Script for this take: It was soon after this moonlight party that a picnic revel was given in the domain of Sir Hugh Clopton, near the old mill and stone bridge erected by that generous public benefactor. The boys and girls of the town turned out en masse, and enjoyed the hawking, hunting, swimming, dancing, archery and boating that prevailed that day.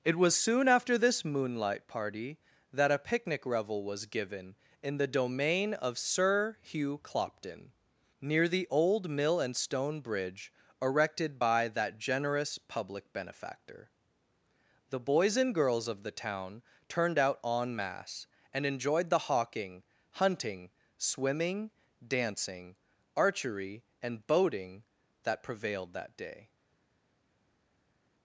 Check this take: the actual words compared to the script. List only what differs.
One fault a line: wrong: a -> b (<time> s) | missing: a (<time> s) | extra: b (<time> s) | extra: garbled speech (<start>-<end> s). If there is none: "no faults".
no faults